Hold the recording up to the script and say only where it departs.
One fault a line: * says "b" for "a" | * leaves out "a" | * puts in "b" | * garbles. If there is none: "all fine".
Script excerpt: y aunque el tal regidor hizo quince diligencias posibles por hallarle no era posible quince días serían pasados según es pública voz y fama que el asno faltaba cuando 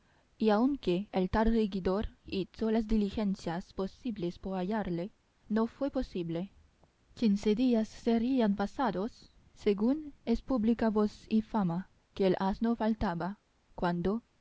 * says "las" for "quince"
* says "fue" for "era"